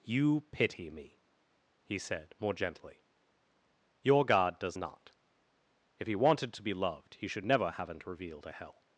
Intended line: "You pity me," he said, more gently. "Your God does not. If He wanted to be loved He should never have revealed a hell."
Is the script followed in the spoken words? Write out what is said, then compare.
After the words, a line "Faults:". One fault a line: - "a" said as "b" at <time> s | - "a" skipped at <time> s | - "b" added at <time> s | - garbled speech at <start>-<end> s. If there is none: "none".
"You pity me," he said, more gently. "Your God does not. If He wanted to be loved He should never haven't revealed a hell."
Faults:
- "have" said as "haven't" at 7.7 s